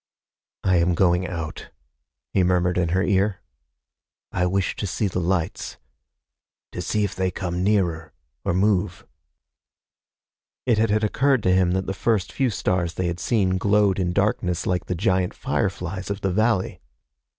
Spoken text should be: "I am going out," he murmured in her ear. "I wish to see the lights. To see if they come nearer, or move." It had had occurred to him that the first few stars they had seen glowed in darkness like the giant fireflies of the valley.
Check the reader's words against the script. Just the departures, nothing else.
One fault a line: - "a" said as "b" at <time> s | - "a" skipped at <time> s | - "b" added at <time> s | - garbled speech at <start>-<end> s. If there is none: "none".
none